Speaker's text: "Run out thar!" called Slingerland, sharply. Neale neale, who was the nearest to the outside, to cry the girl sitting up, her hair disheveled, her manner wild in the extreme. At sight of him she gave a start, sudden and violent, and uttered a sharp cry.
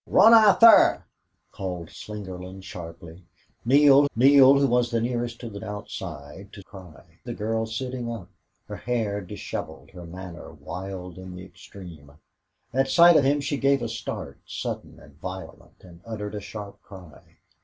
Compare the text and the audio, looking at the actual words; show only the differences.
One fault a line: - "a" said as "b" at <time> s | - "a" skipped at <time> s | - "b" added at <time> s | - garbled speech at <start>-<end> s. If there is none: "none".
none